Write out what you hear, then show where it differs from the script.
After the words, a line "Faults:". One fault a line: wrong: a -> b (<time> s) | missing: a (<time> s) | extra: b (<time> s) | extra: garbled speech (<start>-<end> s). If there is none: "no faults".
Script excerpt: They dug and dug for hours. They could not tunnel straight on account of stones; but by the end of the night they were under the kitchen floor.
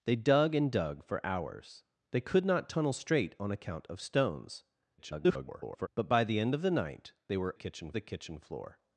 They dug and dug for hours. They could not tunnel straight on account of stones; [garbled] but by the end of the night they were kitchen the kitchen floor.
Faults:
extra: garbled speech (5.0-5.9 s)
wrong: under -> kitchen (7.5 s)